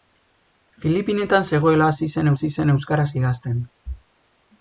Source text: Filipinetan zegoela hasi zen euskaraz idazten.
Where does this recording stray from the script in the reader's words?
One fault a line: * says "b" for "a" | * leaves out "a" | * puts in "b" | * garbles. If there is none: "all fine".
* puts in "hasi zen"